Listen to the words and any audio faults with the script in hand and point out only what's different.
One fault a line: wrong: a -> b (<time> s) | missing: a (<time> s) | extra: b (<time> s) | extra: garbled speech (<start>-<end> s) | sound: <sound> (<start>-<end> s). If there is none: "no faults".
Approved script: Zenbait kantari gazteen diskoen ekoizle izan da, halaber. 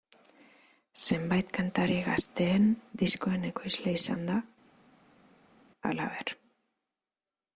no faults